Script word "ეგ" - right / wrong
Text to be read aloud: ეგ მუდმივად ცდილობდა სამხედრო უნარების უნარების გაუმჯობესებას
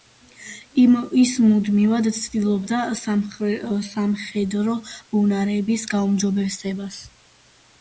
wrong